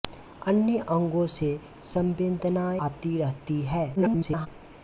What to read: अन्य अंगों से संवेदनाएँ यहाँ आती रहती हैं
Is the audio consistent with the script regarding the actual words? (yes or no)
no